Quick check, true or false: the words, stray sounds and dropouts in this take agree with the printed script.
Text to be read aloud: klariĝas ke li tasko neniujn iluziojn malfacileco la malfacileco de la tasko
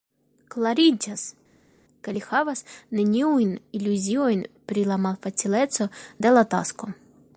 false